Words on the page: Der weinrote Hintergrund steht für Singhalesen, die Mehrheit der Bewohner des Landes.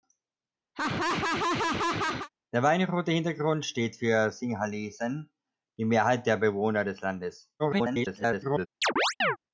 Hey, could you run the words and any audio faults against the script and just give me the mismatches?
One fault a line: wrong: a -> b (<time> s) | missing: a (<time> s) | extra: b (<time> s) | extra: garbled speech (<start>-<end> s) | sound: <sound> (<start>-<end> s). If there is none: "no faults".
sound: laugh (0.7-2.3 s)
extra: garbled speech (7.6-8.7 s)
sound: chirp (8.8-9.4 s)